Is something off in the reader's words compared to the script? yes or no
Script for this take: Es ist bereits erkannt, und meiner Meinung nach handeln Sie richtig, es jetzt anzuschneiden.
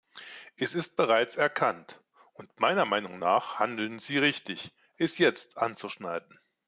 no